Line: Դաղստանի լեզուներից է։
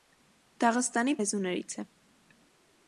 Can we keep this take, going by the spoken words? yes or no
yes